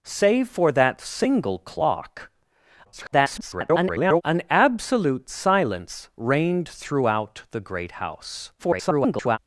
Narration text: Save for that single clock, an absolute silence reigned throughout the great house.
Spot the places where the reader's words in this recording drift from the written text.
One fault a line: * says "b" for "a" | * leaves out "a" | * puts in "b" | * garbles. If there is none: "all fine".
* garbles
* garbles